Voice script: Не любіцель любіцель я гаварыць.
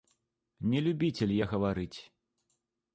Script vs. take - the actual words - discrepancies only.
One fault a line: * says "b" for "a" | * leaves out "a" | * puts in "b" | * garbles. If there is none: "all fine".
* leaves out "любіцель"